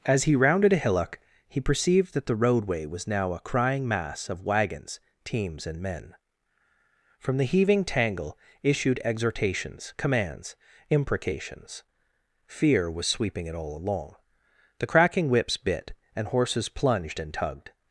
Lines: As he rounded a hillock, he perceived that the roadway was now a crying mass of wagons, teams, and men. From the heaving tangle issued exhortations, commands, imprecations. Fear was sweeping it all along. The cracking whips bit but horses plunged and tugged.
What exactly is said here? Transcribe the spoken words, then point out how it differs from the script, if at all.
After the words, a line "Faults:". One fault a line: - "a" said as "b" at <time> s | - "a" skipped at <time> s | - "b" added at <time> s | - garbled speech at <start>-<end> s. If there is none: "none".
As he rounded a hillock, he perceived that the roadway was now a crying mass of wagons, teams, and men. From the heaving tangle issued exhortations, commands, imprecations. Fear was sweeping it all along. The cracking whips bit and horses plunged and tugged.
Faults:
- "but" said as "and" at 16.1 s